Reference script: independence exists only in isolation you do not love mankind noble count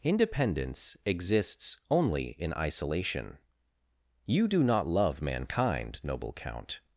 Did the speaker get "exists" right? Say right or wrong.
right